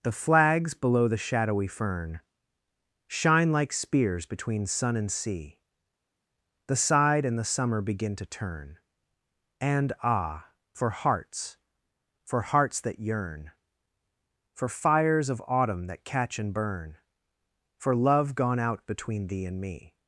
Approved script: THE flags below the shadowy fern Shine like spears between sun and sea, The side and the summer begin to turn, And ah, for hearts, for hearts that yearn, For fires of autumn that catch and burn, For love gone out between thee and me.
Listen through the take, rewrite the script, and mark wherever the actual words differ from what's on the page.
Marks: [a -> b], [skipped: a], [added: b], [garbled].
THE flags below the shadowy fern Shine like spears between sun and sea, The side and the summer begin to turn, And ah, for hearts, for hearts that yearn, For fires of autumn that catch and burn, For love gone out between thee and me.